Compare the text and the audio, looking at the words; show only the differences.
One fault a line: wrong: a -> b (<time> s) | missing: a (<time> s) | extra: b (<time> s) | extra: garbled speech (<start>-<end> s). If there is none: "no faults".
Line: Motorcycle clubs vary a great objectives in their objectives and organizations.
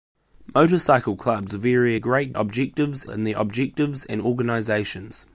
no faults